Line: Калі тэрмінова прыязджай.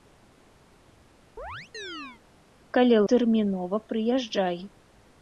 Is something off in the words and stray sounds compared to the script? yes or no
yes